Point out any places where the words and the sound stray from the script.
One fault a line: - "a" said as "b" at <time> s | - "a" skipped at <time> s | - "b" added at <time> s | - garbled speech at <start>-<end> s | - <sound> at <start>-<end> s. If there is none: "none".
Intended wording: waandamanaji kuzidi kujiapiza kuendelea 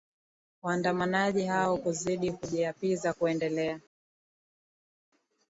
- "hao" added at 1.4 s